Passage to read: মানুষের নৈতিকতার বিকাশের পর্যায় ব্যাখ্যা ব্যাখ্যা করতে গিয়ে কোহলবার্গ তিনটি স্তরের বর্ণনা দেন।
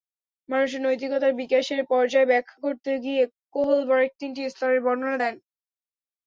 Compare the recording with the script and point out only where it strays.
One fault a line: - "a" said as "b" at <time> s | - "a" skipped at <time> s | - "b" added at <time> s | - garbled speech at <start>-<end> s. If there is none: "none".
- "ব্যাখ্যা" skipped at 2.6 s